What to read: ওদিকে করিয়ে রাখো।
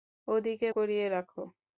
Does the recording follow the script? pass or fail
pass